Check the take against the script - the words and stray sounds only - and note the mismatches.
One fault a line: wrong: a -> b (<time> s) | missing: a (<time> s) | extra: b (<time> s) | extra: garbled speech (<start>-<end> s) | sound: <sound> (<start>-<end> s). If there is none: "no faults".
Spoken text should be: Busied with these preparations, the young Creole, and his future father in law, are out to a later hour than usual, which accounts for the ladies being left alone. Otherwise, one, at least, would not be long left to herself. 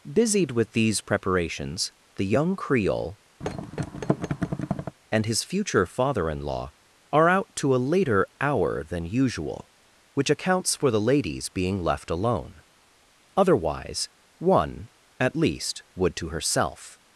sound: thud (3.4-5.0 s)
missing: not be long left (16.1 s)